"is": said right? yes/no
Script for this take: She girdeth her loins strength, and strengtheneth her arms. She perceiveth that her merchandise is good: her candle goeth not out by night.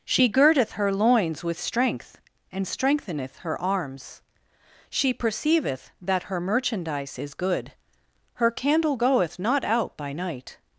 yes